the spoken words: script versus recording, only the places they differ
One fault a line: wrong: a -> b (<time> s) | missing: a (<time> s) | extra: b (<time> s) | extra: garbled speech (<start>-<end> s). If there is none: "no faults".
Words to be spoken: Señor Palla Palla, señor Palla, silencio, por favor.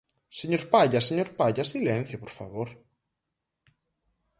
missing: Palla (1.0 s)